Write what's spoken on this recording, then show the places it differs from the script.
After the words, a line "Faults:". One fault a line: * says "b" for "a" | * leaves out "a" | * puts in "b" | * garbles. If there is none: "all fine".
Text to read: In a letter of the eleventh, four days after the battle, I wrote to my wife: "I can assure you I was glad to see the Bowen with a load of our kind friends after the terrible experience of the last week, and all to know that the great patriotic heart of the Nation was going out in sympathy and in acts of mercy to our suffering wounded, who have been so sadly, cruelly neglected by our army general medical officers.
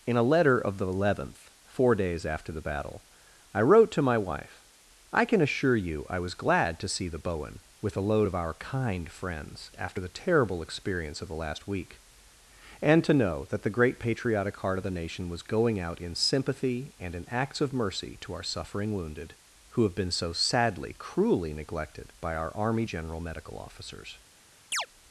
In a letter of the eleventh, four days after the battle, I wrote to my wife: "I can assure you I was glad to see the Bowen with a load of our kind friends after the terrible experience of the last week, and to know that the great patriotic heart of the Nation was going out in sympathy and in acts of mercy to our suffering wounded, who have been so sadly, cruelly neglected by our army general medical officers.
Faults:
* leaves out "all"